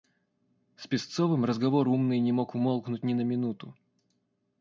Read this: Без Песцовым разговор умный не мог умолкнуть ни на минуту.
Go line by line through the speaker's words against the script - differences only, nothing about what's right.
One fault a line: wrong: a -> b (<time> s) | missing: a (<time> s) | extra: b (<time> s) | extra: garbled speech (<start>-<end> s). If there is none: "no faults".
wrong: Без -> С (0.8 s)